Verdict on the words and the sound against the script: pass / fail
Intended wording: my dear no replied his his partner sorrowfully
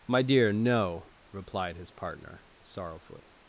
fail